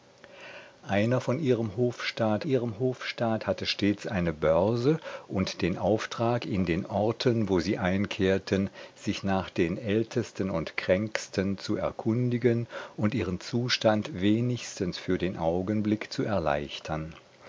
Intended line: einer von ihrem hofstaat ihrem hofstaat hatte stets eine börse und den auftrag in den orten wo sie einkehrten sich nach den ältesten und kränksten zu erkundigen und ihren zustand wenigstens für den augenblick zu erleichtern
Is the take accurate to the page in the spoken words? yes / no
yes